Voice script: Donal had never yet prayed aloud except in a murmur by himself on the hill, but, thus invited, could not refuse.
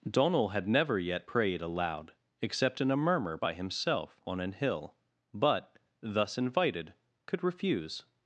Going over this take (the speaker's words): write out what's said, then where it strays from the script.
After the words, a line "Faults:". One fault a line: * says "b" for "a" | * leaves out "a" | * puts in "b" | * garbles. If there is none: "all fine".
Donal had never yet prayed aloud except in a murmur by himself on an hill, but, thus invited, could refuse.
Faults:
* says "an" for "the"
* leaves out "not"